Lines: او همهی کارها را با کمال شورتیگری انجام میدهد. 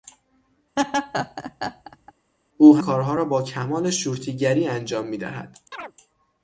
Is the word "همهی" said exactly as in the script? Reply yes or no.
no